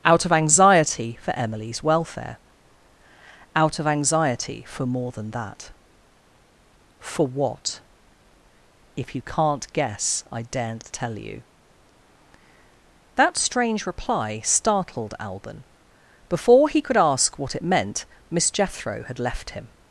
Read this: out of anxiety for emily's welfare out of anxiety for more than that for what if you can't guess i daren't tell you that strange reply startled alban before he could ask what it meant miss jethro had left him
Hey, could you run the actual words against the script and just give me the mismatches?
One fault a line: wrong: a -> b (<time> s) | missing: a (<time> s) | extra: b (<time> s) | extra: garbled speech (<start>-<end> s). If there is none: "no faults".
no faults